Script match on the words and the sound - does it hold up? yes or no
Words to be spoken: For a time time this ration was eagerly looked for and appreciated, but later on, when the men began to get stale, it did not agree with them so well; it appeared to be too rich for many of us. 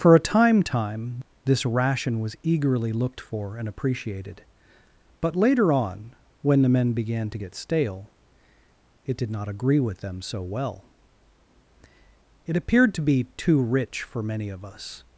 yes